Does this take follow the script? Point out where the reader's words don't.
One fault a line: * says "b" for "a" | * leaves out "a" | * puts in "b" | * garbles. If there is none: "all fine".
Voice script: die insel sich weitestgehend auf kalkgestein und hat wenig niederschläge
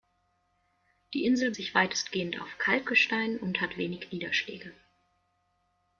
all fine